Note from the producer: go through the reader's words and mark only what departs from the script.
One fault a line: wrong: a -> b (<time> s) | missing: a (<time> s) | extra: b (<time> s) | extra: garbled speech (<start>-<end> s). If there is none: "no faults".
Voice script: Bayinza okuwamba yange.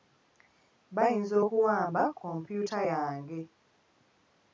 extra: kompyuta (2.2 s)